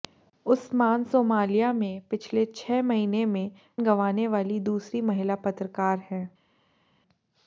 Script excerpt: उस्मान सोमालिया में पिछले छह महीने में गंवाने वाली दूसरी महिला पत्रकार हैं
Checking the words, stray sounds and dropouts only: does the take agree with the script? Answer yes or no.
yes